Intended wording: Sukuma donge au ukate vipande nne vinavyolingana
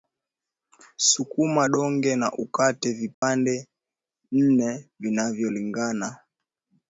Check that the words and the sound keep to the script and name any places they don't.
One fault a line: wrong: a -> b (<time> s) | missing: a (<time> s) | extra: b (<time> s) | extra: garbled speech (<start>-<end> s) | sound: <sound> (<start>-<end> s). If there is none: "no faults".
wrong: au -> na (2.1 s)
sound: dropout (3.1-3.2 s)